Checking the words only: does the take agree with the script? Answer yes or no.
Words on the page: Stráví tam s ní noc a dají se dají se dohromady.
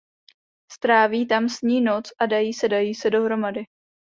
yes